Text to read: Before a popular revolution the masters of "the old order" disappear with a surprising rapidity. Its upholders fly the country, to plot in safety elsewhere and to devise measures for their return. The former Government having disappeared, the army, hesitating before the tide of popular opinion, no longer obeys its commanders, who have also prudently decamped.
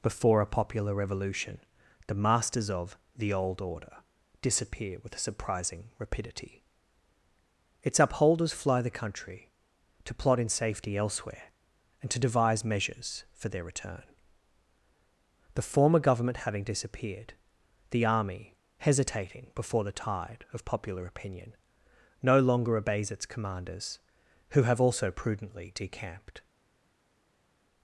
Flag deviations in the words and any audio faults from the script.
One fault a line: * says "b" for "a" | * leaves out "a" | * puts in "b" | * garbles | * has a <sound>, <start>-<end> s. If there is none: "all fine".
all fine